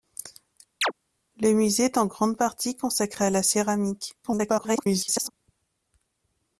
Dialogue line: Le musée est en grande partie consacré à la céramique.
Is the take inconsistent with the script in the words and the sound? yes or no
yes